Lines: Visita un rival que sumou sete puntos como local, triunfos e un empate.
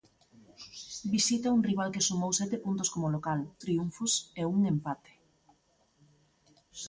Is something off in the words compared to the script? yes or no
no